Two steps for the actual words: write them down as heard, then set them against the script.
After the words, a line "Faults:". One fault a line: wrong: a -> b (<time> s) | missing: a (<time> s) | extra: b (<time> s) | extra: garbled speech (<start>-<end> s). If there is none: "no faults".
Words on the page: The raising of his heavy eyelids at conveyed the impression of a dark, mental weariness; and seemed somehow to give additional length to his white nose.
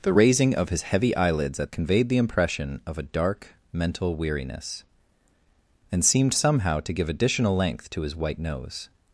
The raising of his heavy eyelids at conveyed the impression of a dark, mental weariness; and seemed somehow to give additional length to his white nose.
Faults:
no faults